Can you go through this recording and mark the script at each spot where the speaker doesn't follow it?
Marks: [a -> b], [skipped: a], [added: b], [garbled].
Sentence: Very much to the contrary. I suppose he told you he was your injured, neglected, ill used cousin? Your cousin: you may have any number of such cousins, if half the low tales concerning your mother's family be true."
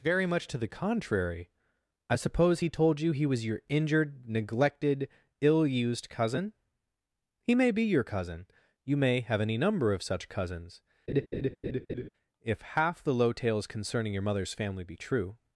Very much to the contrary. I suppose he told you he was your injured, neglected, ill used cousin? [added: He may be] Your cousin: you may have any number of such cousins, if half the low tales concerning your mother's family be true."